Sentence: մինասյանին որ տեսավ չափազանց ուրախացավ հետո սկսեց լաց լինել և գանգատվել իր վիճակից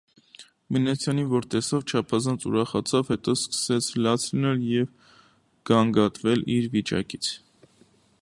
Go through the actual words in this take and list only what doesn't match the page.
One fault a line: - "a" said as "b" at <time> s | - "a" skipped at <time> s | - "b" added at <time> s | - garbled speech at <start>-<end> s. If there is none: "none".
none